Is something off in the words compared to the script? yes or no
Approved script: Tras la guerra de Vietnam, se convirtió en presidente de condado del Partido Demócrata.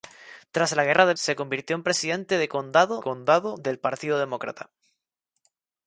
yes